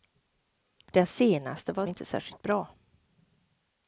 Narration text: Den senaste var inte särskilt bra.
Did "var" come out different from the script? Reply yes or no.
no